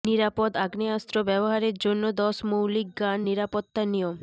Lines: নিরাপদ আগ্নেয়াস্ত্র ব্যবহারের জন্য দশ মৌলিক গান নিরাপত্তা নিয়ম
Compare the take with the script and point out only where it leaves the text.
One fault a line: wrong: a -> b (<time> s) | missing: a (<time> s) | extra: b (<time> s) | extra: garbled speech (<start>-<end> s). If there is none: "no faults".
no faults